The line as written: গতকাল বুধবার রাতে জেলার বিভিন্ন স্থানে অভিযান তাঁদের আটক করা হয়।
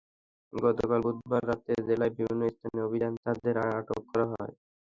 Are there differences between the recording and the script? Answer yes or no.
no